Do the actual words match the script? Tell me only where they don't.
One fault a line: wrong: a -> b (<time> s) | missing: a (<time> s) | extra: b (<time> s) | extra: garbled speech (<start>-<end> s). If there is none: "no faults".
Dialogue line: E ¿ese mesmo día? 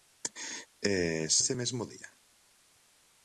no faults